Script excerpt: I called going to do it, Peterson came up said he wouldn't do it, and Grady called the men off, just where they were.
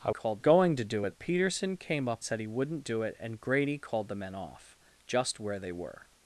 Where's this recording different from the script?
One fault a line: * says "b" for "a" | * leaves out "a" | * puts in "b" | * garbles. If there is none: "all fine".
all fine